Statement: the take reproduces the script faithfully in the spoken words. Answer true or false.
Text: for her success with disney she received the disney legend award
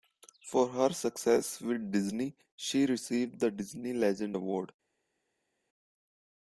true